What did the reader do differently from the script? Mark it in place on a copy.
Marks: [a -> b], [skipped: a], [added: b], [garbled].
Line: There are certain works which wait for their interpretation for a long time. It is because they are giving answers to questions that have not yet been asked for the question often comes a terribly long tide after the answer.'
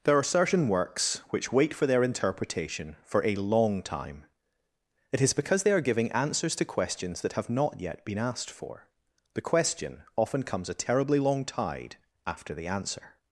There are certain works which wait for their interpretation for a long time. It is because they are giving answers to questions that have not yet been asked for the question often comes a terribly long tide after the answer.'